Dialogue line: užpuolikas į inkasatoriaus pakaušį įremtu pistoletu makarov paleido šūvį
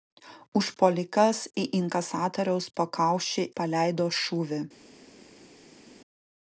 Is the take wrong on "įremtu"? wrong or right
wrong